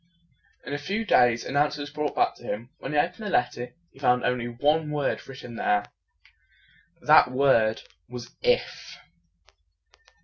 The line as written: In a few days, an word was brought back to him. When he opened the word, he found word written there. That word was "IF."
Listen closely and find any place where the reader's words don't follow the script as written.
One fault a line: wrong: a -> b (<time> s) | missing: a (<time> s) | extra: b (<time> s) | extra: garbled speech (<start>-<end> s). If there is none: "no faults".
wrong: word -> answer (1.6 s)
wrong: word -> letter (3.3 s)
extra: only one (4.2 s)